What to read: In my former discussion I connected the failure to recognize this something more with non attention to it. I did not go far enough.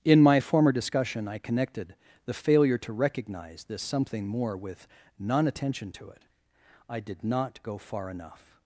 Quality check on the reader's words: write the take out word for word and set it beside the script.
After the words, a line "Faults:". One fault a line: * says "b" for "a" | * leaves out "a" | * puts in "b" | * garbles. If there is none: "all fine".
In my former discussion I connected the failure to recognize this something more with non attention to it. I did not go far enough.
Faults:
all fine